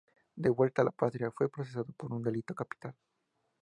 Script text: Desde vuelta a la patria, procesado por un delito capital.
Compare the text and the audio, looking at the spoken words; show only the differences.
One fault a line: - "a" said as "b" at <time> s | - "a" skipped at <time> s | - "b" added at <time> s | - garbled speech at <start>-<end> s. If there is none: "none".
- "Desde" said as "De" at 0.3 s
- "fue" added at 1.3 s